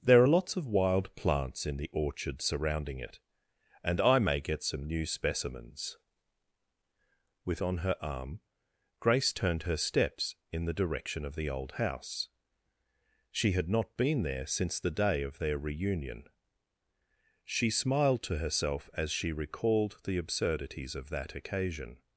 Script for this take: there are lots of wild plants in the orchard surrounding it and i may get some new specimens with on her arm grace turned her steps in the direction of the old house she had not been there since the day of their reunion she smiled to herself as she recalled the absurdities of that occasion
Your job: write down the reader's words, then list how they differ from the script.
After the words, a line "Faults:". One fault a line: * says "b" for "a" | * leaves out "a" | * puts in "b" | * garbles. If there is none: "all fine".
there are lots of wild plants in the orchard surrounding it and i may get some new specimens with on her arm grace turned her steps in the direction of the old house she had not been there since the day of their reunion she smiled to herself as she recalled the absurdities of that occasion
Faults:
all fine